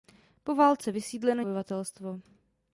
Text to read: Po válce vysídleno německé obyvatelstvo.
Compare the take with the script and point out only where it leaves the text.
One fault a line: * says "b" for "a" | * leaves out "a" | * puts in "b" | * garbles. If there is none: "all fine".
* leaves out "německé"